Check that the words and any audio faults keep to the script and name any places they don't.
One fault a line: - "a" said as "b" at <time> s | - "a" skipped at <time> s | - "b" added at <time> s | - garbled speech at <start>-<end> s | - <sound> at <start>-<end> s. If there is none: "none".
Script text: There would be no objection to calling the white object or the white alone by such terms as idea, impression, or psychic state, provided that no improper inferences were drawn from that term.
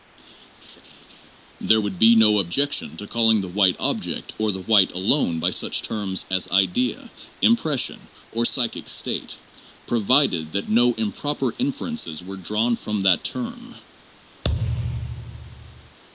- laugh at 0.6-1.3 s
- thud at 14.4-16.0 s